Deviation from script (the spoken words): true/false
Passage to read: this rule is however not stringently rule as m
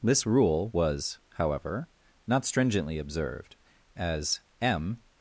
true